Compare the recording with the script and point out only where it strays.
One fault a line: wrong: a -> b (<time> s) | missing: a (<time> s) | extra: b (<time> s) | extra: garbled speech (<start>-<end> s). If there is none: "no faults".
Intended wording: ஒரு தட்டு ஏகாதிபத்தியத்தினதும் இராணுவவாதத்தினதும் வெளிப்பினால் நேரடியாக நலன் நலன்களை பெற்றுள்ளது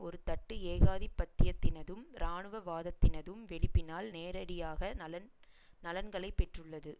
no faults